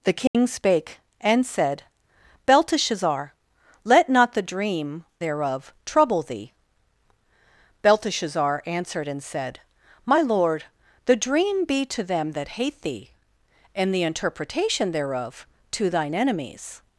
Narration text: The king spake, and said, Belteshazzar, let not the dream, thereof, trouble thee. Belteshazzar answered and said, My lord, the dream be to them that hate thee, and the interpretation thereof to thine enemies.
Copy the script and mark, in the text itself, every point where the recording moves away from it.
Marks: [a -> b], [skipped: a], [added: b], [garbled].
The king spake, and said, Belteshazzar, let not the dream, thereof, trouble thee. Belteshazzar answered and said, My lord, the dream be to them that hate thee, and the interpretation thereof to thine enemies.